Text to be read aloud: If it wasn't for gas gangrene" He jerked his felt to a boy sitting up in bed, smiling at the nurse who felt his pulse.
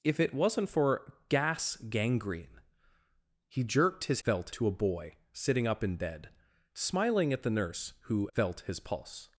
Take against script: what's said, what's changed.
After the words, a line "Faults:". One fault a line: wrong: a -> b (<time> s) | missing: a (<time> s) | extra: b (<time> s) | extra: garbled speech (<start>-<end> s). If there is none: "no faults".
If it wasn't for gas gangrene" He jerked his felt to a boy sitting up in bed, smiling at the nurse who felt his pulse.
Faults:
no faults